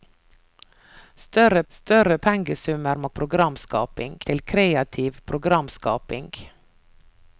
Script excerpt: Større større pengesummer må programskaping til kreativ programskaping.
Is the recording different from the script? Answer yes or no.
no